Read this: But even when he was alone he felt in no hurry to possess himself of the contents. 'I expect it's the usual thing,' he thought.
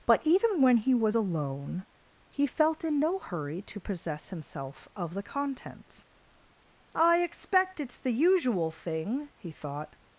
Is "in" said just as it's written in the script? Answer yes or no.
yes